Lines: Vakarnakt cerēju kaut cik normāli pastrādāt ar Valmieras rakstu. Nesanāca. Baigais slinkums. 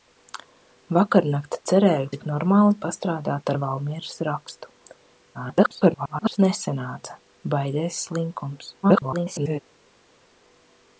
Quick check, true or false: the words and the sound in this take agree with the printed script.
false